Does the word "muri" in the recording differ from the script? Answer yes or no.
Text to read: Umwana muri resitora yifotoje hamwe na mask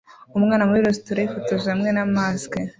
no